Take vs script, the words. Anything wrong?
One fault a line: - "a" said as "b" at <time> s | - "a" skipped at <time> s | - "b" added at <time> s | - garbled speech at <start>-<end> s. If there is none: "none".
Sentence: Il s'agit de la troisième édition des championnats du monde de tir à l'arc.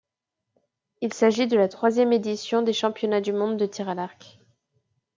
none